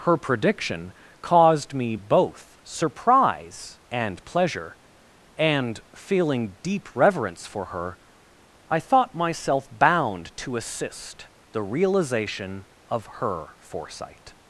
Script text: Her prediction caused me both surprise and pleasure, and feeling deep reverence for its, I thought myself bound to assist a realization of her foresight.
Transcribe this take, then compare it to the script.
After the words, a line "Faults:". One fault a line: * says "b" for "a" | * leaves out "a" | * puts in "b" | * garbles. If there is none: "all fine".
Her prediction caused me both surprise and pleasure, and feeling deep reverence for her, I thought myself bound to assist the realization of her foresight.
Faults:
* says "her" for "its"
* says "the" for "a"